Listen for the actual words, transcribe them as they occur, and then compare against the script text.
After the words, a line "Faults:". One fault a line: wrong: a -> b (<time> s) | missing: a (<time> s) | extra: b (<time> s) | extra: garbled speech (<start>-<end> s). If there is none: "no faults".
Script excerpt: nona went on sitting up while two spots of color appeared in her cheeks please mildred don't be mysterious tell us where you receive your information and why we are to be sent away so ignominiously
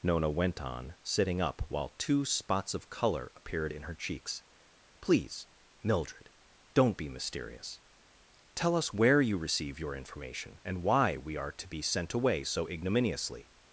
nona went on sitting up while two spots of color appeared in her cheeks please mildred don't be mysterious tell us where you receive your information and why we are to be sent away so ignominiously
Faults:
no faults